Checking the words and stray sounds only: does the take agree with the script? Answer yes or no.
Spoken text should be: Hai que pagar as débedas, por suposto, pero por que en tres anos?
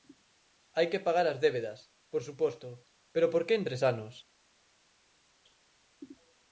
yes